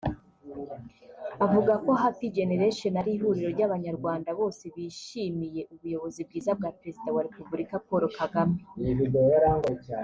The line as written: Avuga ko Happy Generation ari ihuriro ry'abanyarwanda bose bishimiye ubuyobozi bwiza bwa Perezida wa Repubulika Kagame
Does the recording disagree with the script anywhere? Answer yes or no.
yes